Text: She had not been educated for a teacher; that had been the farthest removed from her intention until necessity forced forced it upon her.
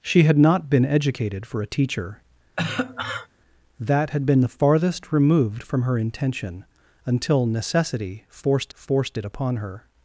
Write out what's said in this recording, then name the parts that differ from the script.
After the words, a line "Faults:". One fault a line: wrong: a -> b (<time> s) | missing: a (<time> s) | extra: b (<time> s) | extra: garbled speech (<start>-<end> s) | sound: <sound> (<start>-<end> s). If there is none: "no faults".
She had not been educated for a teacher; that had been the farthest removed from her intention until necessity forced forced it upon her.
Faults:
sound: cough (2.6-3.3 s)